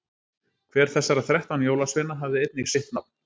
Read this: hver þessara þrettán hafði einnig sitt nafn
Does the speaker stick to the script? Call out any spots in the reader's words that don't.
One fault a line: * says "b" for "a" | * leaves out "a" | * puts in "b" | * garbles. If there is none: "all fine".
* puts in "jólasveina"